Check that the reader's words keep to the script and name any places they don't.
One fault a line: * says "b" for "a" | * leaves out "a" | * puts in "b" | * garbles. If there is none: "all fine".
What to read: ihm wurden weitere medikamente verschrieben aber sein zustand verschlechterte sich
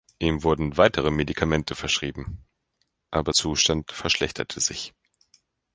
* leaves out "sein"